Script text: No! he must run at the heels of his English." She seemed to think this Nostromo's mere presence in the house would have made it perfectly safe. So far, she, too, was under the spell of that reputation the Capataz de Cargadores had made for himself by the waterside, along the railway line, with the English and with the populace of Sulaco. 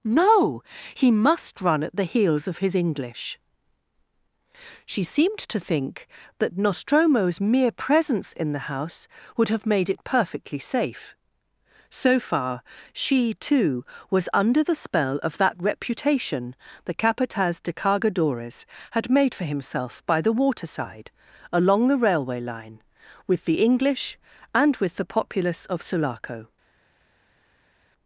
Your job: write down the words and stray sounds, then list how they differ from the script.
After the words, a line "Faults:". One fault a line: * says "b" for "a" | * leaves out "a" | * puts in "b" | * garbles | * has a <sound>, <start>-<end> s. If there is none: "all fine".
No! he must run at the heels of his English." She seemed to think that Nostromo's mere presence in the house would have made it perfectly safe. So far, she, too, was under the spell of that reputation the Capataz de Cargadores had made for himself by the waterside, along the railway line, with the English and with the populace of Sulaco.
Faults:
* says "that" for "this"